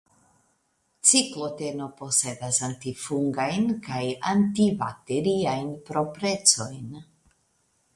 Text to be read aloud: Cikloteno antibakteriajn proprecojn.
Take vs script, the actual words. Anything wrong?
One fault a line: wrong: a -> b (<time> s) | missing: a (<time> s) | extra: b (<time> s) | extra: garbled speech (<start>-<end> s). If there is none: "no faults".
extra: posedas antifungajn kaj (2.0 s)